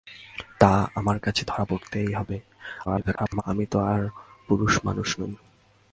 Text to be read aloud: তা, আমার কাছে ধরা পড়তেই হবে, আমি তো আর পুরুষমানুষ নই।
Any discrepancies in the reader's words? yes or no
yes